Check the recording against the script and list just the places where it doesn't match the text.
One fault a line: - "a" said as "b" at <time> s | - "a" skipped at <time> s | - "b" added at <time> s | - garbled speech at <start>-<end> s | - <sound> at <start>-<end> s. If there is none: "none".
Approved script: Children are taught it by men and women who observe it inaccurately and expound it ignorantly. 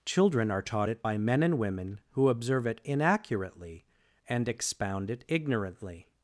none